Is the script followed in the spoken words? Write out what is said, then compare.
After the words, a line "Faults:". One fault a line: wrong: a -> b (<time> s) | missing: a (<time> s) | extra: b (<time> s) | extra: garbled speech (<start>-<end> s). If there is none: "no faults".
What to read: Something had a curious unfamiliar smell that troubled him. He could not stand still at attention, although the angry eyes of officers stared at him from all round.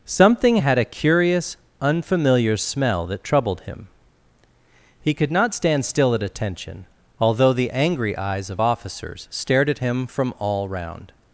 Something had a curious unfamiliar smell that troubled him. He could not stand still at attention, although the angry eyes of officers stared at him from all round.
Faults:
no faults